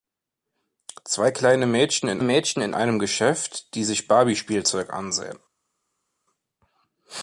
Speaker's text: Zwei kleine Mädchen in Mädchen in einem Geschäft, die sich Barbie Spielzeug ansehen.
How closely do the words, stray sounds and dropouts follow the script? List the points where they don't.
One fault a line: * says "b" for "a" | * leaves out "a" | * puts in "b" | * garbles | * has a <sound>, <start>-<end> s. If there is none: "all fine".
all fine